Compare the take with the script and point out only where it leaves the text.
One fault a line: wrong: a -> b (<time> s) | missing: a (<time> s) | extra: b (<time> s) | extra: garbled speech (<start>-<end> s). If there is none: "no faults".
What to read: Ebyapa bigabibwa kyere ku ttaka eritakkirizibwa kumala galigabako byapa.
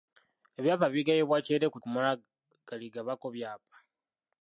missing: ttaka eritakkirizibwa (1.8 s)